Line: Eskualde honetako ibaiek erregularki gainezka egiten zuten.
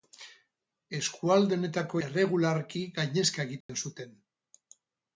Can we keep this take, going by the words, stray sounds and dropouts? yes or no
no